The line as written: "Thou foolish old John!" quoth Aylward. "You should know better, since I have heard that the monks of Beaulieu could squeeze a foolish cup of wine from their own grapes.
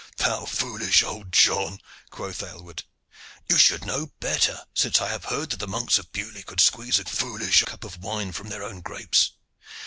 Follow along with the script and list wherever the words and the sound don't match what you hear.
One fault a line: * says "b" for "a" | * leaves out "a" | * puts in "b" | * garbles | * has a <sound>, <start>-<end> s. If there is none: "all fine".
all fine